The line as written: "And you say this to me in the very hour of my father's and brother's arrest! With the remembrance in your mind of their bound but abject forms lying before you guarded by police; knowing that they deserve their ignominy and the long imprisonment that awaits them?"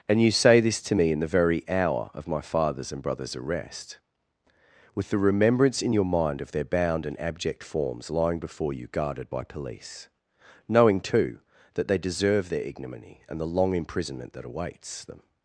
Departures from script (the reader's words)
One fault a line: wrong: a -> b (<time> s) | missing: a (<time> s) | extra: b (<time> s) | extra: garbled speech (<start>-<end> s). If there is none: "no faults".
wrong: but -> and (7.1 s)
extra: too (11.0 s)